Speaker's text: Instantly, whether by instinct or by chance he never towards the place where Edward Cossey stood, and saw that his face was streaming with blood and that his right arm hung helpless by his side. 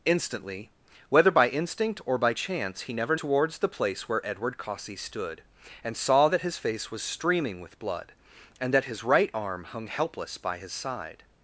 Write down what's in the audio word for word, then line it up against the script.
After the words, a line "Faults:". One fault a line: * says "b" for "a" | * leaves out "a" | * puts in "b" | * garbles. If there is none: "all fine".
Instantly, whether by instinct or by chance he never towards the place where Edward Cossey stood, and saw that his face was streaming with blood and that his right arm hung helpless by his side.
Faults:
all fine